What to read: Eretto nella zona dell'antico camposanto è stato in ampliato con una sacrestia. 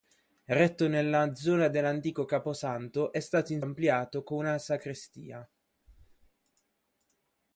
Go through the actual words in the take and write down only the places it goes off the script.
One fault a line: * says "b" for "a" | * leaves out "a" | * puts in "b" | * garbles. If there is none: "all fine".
all fine